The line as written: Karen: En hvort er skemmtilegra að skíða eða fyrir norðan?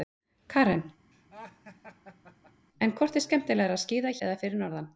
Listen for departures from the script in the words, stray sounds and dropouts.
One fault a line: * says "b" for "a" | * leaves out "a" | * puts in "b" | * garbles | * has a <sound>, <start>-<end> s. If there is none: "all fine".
* has a laugh, 1.1-2.7 s